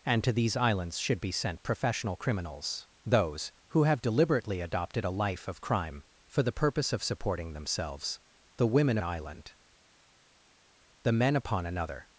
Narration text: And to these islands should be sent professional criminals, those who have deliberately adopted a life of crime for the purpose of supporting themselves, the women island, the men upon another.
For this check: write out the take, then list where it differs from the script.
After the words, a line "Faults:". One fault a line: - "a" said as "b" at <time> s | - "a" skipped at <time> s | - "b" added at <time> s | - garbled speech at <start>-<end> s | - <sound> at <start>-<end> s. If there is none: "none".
And to these islands should be sent professional criminals, those who have deliberately adopted a life of crime for the purpose of supporting themselves, the women island, the men upon another.
Faults:
none